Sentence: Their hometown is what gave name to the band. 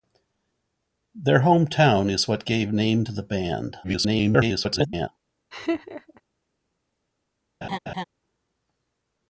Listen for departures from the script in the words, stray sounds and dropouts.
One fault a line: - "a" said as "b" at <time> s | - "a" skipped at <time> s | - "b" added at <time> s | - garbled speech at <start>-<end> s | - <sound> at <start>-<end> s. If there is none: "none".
- garbled speech at 3.8-5.1 s
- laugh at 5.5-6.2 s
- laugh at 7.6-8.0 s